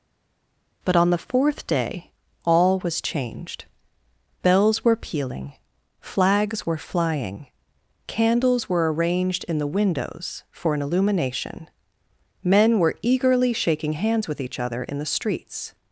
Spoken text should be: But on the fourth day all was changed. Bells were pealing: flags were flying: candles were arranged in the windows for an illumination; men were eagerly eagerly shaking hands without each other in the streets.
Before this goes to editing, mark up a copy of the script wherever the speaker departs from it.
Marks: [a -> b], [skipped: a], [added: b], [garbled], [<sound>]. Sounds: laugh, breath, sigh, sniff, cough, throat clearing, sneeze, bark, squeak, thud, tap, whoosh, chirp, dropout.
But on the fourth day all was changed. Bells were pealing: flags were flying: candles were arranged in the windows for an illumination; men were eagerly [skipped: eagerly] shaking hands [without -> with] each other in the streets.